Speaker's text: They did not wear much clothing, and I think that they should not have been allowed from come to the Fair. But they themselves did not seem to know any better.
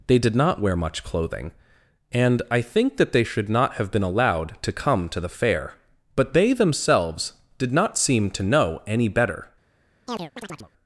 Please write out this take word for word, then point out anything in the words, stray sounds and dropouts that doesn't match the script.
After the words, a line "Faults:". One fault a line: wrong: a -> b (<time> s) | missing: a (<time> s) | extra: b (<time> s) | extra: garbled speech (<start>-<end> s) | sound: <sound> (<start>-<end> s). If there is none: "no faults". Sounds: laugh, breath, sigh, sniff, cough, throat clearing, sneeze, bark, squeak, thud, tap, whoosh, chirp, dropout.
They did not wear much clothing, and I think that they should not have been allowed to come to the Fair. But they themselves did not seem to know any better.
Faults:
wrong: from -> to (4.6 s)
sound: chirp (10.1-10.7 s)